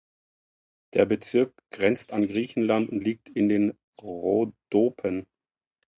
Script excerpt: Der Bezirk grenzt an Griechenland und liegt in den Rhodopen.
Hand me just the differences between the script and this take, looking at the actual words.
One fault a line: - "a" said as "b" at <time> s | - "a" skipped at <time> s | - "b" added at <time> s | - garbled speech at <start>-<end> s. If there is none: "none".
none